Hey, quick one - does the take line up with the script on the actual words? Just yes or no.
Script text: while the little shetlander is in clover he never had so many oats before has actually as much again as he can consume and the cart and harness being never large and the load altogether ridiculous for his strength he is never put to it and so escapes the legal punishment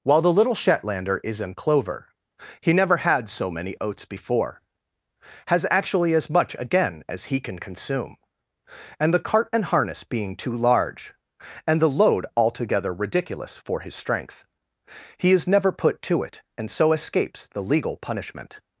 no